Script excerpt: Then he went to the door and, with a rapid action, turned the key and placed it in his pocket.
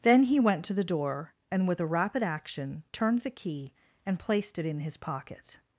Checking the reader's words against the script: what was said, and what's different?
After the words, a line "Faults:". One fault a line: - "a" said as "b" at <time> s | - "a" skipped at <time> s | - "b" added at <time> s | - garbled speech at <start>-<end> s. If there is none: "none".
Then he went to the door and, with a rapid action, turned the key and placed it in his pocket.
Faults:
none